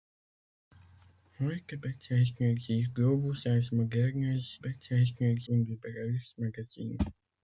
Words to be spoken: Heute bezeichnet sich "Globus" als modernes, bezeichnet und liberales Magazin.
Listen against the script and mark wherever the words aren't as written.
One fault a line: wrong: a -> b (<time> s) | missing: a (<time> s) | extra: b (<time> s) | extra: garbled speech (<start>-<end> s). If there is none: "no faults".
no faults